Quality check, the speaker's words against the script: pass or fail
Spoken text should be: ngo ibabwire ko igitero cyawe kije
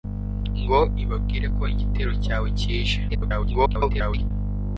fail